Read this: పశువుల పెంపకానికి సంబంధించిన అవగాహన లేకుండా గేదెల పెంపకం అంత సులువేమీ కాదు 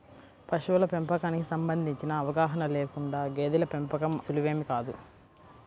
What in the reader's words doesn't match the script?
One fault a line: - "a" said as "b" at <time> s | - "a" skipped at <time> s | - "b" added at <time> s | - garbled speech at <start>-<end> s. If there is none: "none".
- "అంత" skipped at 4.2 s